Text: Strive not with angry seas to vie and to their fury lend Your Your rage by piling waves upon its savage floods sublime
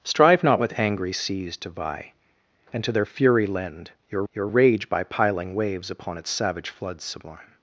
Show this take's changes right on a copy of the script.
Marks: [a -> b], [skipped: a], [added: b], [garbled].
Strive not with angry seas to vie and to their fury lend Your Your rage by piling waves upon its savage floods sublime